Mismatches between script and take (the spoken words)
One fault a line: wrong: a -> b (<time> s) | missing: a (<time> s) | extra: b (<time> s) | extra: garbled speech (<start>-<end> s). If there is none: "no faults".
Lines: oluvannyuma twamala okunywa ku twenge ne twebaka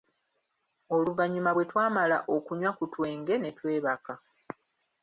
extra: bwe (1.5 s)